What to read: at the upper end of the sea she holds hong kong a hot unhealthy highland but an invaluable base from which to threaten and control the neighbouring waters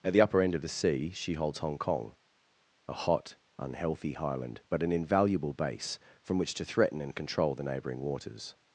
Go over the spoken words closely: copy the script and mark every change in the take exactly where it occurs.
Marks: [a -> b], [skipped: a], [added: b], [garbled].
at the upper end of the sea she holds hong kong a hot unhealthy highland but an invaluable base from which to threaten and control the neighbouring waters